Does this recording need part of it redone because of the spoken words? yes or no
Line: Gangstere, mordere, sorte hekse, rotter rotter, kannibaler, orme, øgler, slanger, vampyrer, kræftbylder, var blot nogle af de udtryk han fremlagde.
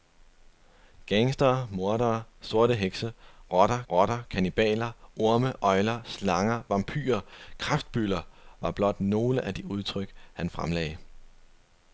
no